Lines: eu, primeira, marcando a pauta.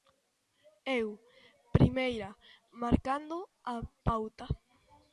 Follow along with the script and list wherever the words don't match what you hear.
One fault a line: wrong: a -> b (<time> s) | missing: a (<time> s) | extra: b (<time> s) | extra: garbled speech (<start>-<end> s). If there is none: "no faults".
no faults